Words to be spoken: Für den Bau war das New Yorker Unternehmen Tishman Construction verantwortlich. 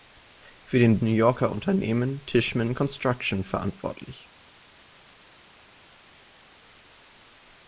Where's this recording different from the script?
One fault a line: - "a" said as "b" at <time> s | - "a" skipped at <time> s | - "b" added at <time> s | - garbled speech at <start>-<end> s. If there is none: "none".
- "Bau war das" skipped at 1.0 s